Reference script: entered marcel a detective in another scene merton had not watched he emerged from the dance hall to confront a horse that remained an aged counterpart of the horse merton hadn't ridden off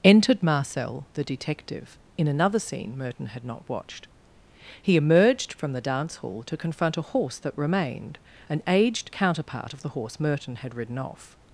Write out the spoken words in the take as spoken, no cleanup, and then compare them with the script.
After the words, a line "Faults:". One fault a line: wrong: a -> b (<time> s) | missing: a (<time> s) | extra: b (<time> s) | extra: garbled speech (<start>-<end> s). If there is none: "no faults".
entered marcel the detective in another scene merton had not watched he emerged from the dance hall to confront a horse that remained an aged counterpart of the horse merton had ridden off
Faults:
wrong: a -> the (1.1 s)
wrong: hadn't -> had (10.6 s)